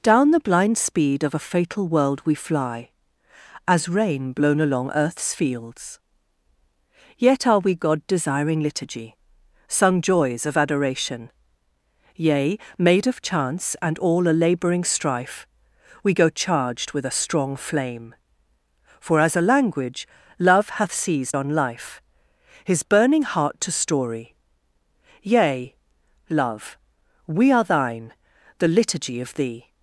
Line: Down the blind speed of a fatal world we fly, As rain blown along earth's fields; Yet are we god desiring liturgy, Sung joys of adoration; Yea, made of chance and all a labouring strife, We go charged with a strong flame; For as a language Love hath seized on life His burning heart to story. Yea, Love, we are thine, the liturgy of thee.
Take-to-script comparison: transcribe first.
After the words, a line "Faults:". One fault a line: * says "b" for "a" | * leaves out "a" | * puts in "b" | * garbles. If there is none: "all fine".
Down the blind speed of a fatal world we fly, As rain blown along earth's fields; Yet are we god desiring liturgy, Sung joys of adoration; Yea, made of chance and all a labouring strife, We go charged with a strong flame; For as a language Love hath seized on life His burning heart to story. Yea, Love, we are thine, the liturgy of thee.
Faults:
all fine